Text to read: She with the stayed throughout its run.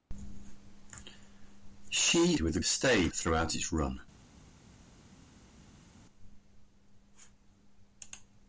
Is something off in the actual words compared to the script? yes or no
no